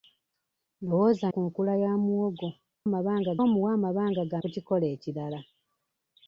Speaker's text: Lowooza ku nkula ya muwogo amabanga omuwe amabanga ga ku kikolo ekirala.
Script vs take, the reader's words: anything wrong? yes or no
no